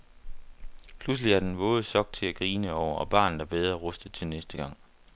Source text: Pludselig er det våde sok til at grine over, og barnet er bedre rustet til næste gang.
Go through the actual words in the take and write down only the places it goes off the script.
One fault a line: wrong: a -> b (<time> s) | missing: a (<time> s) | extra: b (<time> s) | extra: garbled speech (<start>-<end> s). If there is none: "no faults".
wrong: det -> den (1.4 s)